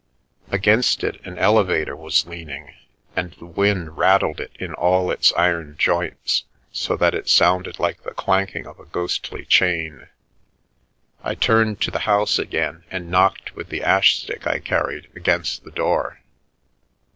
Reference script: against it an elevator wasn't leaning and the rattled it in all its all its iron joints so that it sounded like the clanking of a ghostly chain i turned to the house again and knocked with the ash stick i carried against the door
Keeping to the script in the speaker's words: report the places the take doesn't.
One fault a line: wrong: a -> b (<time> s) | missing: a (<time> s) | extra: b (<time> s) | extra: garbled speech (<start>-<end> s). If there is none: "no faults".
wrong: wasn't -> was (1.9 s)
extra: wind (3.5 s)
missing: all its (5.3 s)